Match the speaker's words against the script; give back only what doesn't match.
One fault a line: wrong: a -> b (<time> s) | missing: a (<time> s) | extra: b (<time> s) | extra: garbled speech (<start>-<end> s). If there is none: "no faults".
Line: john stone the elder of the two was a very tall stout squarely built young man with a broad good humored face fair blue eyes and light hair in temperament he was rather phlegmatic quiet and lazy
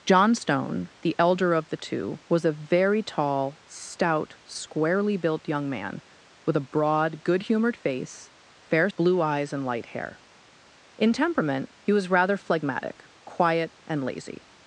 no faults